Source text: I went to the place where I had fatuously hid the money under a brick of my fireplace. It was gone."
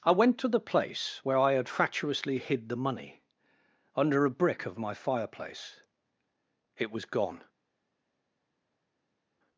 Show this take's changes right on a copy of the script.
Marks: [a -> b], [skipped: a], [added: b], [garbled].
I went to the place where I had fatuously hid the money under a brick of my fireplace. It was gone."